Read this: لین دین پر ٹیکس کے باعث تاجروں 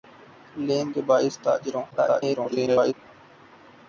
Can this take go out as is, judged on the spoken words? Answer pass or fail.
fail